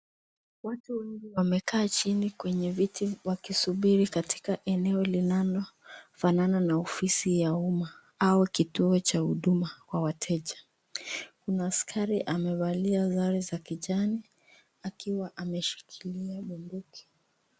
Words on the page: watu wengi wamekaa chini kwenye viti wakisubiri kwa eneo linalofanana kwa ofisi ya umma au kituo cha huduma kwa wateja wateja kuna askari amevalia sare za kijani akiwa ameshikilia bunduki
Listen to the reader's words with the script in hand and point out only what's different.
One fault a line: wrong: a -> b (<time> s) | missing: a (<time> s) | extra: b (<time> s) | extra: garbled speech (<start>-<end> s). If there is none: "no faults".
wrong: kwa -> katika (4.1 s)
wrong: kwa -> na (6.6 s)
missing: wateja (10.5 s)